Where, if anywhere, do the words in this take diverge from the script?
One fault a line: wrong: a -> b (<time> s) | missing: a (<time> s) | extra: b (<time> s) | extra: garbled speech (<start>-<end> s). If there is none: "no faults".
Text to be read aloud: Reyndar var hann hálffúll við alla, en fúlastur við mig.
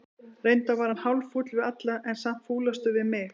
extra: samt (2.2 s)